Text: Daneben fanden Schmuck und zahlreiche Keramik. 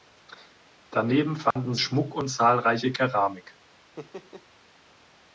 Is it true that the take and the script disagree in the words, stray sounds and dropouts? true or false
true